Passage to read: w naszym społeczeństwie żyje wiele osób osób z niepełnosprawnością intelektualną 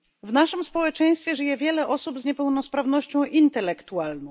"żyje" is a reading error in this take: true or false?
false